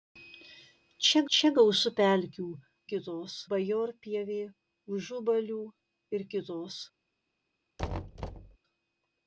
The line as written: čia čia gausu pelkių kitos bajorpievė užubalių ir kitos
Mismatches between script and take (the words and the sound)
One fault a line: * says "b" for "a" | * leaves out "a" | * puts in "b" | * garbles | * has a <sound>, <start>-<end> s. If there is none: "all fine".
* has a thud, 7.8-8.6 s